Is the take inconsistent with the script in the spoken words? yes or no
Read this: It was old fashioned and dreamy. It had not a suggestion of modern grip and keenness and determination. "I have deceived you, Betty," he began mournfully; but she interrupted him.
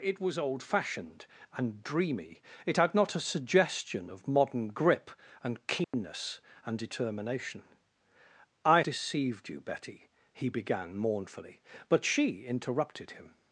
yes